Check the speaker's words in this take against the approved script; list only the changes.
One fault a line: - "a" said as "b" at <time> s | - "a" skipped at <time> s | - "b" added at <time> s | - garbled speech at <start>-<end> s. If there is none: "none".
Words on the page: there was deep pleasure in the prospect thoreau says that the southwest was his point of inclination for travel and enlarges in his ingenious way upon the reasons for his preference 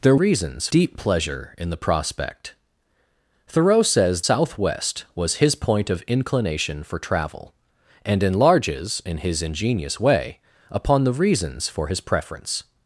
- "was" said as "reasons" at 0.1 s
- "that the" skipped at 4.2 s